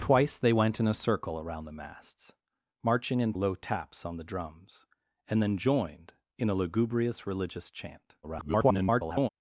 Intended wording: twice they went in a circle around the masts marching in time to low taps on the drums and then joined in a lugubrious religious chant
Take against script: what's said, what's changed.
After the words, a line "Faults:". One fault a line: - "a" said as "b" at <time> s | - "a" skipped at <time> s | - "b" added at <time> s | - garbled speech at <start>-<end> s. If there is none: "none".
twice they went in a circle around the masts marching in low taps on the drums and then joined in a lugubrious religious chant [garbled]
Faults:
- "time to" skipped at 3.4 s
- garbled speech at 8.2-9.3 s